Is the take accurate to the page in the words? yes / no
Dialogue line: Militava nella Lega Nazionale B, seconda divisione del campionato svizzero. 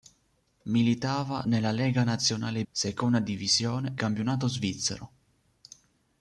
no